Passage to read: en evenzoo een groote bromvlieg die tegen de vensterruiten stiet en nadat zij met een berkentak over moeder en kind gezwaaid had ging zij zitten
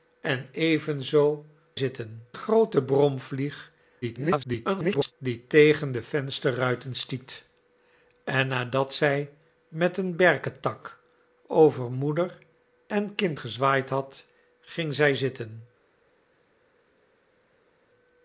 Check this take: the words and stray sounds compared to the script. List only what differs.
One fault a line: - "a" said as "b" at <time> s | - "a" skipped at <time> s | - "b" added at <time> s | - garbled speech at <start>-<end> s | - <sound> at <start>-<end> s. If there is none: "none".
- "een" said as "zitten" at 1.7 s
- garbled speech at 4.0-5.1 s